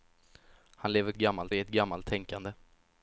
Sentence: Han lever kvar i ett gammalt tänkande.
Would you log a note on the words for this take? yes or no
yes